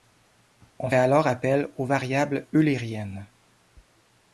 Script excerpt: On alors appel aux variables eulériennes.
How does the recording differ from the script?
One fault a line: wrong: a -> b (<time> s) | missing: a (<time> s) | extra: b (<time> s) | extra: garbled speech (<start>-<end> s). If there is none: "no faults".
no faults